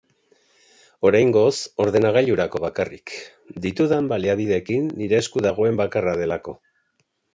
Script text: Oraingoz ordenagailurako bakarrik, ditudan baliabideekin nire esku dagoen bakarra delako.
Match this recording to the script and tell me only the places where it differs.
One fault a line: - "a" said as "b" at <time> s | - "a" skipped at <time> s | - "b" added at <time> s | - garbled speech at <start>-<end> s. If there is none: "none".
none